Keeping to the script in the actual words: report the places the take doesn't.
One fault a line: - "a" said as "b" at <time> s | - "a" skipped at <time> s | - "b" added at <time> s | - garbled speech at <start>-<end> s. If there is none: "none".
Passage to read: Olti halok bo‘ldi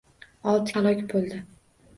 none